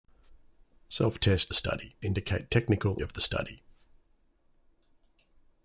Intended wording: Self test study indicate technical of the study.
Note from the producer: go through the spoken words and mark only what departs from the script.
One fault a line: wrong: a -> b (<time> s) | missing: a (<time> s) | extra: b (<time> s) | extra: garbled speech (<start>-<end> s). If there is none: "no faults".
no faults